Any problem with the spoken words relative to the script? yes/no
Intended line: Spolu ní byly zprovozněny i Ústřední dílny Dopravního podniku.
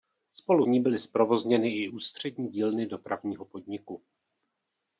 no